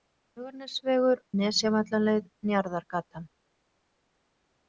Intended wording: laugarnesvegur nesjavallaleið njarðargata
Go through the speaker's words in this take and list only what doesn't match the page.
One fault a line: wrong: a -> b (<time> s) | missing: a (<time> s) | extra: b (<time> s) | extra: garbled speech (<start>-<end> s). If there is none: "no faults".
no faults